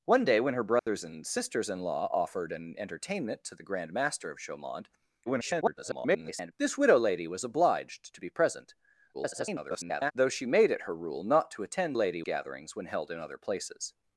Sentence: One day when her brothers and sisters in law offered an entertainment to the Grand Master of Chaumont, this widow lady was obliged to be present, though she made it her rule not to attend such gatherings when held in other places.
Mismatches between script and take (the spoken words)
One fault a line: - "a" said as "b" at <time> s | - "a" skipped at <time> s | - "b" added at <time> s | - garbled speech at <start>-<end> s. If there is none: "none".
- garbled speech at 5.3-6.5 s
- garbled speech at 9.1-10.1 s
- "such" said as "lady" at 11.9 s